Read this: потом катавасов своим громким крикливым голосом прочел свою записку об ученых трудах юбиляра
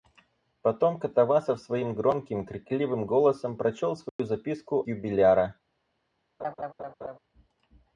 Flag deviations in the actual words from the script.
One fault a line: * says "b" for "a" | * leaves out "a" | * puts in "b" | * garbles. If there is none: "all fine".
* leaves out "об ученых трудах"